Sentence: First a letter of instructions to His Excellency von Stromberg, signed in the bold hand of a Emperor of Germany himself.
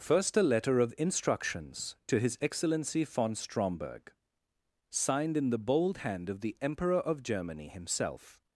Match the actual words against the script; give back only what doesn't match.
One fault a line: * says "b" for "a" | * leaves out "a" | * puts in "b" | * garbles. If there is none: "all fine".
* says "the" for "a"